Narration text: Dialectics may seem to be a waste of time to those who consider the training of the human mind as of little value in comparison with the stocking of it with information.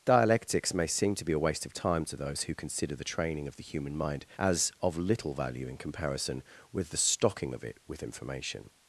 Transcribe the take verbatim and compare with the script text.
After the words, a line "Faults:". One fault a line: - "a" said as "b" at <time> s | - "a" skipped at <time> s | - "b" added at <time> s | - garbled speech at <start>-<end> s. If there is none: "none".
Dialectics may seem to be a waste of time to those who consider the training of the human mind as of little value in comparison with the stocking of it with information.
Faults:
none